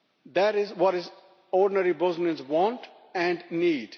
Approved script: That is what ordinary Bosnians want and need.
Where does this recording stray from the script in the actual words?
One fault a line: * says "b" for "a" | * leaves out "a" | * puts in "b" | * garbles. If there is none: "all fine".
all fine